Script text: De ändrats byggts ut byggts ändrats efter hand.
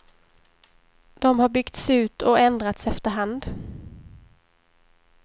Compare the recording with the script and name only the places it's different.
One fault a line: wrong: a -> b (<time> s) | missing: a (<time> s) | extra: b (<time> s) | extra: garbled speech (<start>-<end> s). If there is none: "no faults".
wrong: ändrats -> har (1.4 s)
wrong: byggts -> och (2.2 s)